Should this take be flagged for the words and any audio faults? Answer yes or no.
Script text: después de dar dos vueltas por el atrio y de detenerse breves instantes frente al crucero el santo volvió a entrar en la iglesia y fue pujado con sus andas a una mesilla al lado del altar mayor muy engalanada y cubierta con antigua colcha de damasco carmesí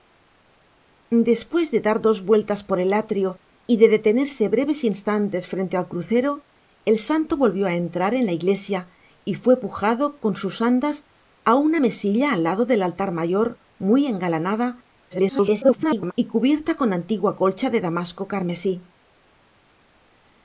yes